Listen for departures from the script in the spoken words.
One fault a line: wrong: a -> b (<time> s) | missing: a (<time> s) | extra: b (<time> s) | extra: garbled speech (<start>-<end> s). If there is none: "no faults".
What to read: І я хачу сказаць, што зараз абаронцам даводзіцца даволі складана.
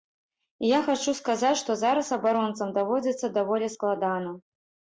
no faults